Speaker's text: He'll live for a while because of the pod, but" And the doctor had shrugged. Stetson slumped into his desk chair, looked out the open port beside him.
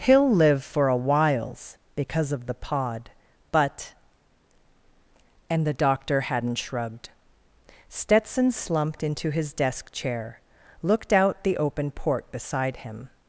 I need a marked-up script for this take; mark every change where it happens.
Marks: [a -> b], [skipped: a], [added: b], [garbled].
He'll live for a [while -> whiles] because of the pod, but" And the doctor [had -> hadn't] shrugged. Stetson slumped into his desk chair, looked out the open port beside him.